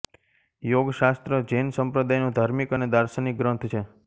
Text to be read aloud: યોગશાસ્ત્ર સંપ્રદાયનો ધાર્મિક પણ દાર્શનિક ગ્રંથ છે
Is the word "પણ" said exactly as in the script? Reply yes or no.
no